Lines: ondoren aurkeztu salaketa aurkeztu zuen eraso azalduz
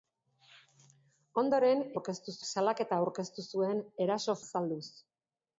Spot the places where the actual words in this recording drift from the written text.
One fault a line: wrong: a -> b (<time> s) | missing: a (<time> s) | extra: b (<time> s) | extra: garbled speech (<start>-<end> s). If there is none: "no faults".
no faults